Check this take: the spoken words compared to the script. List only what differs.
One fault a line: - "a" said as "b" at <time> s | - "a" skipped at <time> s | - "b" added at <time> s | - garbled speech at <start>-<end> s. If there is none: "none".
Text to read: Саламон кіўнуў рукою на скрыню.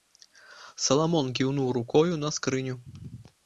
none